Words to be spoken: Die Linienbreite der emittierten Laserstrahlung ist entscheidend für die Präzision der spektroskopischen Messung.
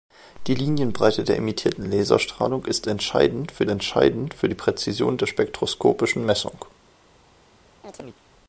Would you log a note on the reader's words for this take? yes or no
yes